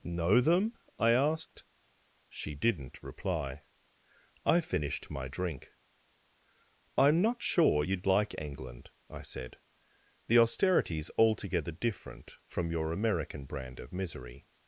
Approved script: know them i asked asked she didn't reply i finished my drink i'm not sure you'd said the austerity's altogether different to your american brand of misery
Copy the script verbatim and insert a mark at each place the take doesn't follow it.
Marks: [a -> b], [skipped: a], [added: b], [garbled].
know them i asked [skipped: asked] she didn't reply i finished my drink i'm not sure you'd [added: like england i] said the austerity's altogether different [to -> from] your american brand of misery